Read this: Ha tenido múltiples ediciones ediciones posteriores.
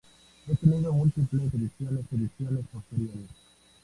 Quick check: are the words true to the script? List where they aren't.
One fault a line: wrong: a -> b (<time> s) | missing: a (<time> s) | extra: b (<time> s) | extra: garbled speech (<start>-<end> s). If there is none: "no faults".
no faults